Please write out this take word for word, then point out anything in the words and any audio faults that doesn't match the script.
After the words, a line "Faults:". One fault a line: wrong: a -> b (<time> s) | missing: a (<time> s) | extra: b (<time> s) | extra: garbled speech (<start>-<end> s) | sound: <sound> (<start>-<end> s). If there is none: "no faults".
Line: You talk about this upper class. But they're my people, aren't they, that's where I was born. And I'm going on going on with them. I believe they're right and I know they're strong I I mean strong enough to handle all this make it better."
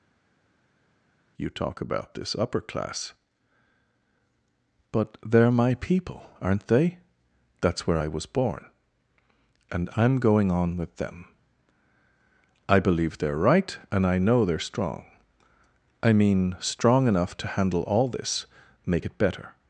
You talk about this upper class. But they're my people, aren't they, that's where I was born. And I'm going on with them. I believe they're right and I know they're strong I mean strong enough to handle all this make it better."
Faults:
missing: going on (10.8 s)
missing: I (16.1 s)